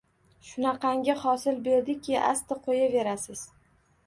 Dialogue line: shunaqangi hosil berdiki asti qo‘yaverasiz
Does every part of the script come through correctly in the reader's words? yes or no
yes